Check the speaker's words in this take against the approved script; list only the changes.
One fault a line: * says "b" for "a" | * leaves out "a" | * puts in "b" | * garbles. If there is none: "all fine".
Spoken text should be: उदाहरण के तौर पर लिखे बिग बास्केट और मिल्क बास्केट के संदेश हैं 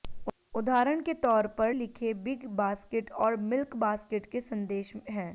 all fine